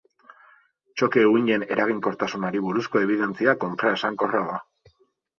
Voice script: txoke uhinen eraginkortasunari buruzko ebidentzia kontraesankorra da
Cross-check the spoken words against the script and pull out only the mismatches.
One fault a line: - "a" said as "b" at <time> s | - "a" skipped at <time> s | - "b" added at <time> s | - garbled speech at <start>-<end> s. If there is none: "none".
none